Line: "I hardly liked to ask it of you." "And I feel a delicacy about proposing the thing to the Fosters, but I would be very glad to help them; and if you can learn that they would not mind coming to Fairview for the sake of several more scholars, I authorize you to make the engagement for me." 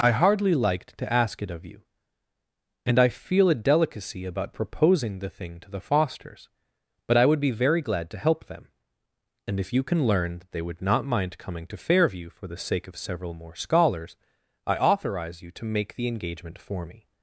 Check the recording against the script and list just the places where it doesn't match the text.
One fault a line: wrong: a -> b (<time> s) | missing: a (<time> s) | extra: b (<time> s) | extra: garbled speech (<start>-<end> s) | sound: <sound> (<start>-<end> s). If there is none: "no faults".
no faults